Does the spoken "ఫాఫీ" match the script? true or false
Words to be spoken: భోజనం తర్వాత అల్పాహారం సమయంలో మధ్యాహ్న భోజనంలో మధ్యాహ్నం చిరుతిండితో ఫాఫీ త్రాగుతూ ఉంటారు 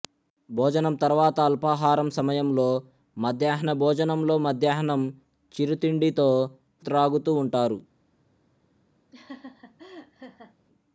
false